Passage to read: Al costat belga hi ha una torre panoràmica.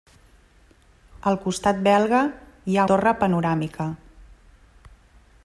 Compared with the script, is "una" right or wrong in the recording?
wrong